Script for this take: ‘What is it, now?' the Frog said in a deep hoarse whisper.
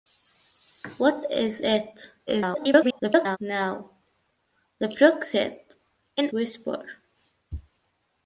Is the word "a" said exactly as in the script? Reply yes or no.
no